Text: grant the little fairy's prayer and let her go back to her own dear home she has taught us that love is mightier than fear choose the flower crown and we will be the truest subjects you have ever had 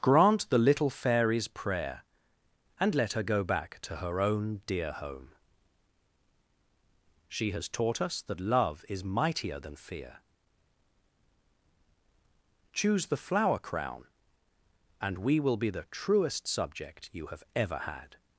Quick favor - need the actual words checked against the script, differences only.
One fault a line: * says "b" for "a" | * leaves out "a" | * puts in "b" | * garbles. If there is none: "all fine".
* says "subject" for "subjects"